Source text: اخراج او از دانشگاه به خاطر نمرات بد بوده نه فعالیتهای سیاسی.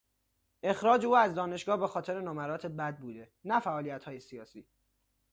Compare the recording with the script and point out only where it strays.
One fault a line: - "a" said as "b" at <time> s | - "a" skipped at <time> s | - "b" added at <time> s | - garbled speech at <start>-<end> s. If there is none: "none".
none